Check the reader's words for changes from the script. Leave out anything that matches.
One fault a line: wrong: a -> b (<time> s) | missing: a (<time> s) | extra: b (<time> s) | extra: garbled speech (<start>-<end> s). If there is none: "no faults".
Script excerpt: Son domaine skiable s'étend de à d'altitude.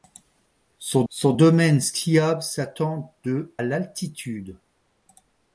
extra: son (1.1 s)
missing: à (3.6 s)